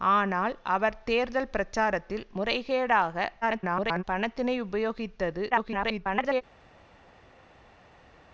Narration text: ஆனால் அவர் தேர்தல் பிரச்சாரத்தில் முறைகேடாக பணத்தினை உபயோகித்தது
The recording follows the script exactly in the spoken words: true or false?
false